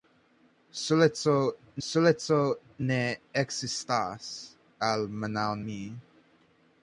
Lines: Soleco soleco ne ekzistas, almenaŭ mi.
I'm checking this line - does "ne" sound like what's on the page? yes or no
yes